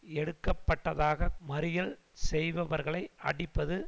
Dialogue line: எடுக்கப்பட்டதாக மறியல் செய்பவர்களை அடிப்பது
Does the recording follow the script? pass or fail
pass